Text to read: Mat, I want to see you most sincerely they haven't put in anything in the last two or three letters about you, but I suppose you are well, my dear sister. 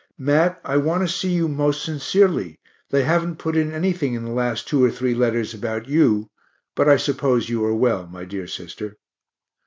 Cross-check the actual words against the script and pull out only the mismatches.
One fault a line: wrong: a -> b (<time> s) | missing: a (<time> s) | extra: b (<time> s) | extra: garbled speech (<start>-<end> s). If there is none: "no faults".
no faults